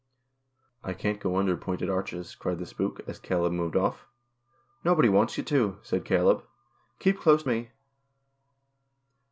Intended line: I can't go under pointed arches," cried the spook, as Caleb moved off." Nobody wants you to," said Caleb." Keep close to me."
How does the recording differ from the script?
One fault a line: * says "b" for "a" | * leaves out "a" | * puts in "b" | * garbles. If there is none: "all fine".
* leaves out "to"